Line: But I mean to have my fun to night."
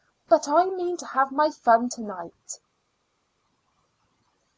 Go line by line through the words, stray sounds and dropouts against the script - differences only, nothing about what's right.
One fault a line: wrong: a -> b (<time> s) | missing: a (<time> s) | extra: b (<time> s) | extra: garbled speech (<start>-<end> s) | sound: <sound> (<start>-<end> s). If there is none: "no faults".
no faults